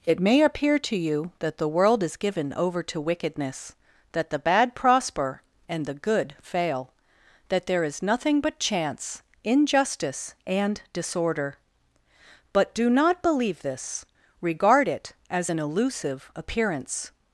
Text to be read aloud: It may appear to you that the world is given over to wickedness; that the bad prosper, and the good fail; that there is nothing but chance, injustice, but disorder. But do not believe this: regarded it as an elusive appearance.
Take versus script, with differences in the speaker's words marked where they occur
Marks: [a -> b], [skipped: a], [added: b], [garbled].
It may appear to you that the world is given over to wickedness; that the bad prosper, and the good fail; that there is nothing but chance, injustice, [but -> and] disorder. But do not believe this: [regarded -> regard] it as an elusive appearance.